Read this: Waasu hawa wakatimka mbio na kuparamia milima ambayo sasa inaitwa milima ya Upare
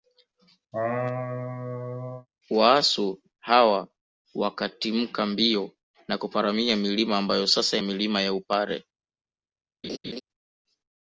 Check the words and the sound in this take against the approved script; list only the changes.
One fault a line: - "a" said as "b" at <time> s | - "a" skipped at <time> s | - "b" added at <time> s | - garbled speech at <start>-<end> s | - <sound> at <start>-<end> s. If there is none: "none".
- laugh at 0.7-2.3 s
- "inaitwa" skipped at 7.8 s
- laugh at 9.8-10.2 s